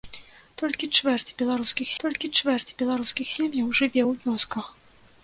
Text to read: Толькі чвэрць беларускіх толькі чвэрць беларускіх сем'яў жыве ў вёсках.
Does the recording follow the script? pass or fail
pass